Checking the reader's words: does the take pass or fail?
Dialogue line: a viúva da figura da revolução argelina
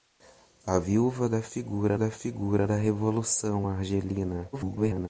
fail